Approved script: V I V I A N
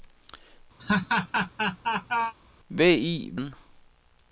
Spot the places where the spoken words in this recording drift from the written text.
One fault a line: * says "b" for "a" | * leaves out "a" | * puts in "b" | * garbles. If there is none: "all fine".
* leaves out "I A"